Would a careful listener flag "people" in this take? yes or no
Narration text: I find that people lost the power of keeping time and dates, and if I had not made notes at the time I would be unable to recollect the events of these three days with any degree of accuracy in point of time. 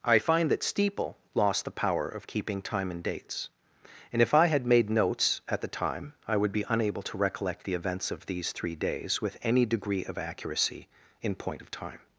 yes